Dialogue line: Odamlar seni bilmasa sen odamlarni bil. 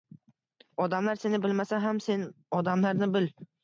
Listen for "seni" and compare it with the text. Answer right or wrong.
right